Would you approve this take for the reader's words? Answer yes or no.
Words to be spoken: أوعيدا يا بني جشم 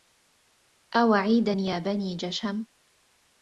yes